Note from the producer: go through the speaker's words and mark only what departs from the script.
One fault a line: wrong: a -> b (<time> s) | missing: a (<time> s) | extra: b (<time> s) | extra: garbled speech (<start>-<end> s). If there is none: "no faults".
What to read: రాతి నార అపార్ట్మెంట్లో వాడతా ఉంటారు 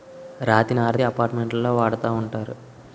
no faults